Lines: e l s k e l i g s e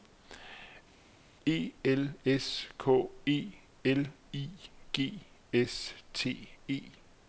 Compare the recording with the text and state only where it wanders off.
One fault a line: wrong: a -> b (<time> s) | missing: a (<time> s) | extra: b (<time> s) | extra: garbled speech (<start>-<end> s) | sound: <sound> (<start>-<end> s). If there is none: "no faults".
extra: t (6.1 s)